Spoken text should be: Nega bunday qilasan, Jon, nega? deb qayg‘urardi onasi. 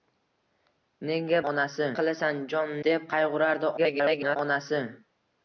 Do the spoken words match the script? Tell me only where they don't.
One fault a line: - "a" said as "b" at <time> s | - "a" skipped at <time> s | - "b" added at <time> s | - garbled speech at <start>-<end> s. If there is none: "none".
- "bunday" said as "onasi" at 1.5 s
- "nega" skipped at 2.7 s
- garbled speech at 3.8-4.4 s